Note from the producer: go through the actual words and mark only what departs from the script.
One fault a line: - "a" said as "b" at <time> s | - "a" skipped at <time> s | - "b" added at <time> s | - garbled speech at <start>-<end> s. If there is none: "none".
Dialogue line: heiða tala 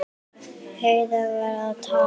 - "var að" added at 1.3 s